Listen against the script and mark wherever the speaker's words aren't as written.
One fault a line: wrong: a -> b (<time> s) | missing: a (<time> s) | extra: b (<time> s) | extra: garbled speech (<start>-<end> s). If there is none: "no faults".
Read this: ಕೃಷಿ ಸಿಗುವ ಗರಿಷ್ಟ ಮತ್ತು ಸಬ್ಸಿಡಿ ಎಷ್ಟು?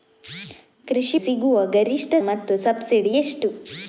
no faults